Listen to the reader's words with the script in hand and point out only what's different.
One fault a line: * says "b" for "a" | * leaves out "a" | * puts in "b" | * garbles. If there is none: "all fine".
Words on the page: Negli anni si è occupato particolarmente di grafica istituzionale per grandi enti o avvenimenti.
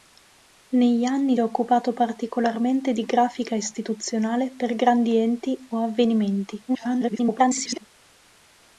* leaves out "si"
* garbles